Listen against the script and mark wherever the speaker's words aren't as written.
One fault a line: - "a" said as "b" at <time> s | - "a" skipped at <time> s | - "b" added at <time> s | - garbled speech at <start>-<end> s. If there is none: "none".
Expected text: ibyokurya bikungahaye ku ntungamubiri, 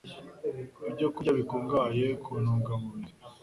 none